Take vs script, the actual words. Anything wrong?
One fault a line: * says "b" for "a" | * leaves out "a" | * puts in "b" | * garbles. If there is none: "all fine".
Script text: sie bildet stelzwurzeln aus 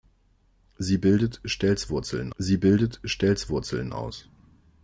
* puts in "sie bildet stelzwurzeln"